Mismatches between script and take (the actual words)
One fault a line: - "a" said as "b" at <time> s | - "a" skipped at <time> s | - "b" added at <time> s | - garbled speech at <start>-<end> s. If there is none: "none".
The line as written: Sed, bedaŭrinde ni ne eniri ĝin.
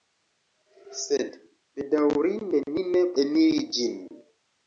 none